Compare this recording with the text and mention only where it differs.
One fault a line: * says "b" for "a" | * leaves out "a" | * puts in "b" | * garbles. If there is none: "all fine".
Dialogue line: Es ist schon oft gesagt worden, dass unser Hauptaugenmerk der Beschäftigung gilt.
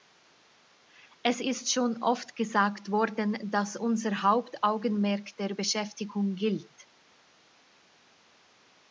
all fine